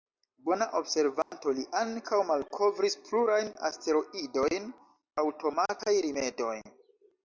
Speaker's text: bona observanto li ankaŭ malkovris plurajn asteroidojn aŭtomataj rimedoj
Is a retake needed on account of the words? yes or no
no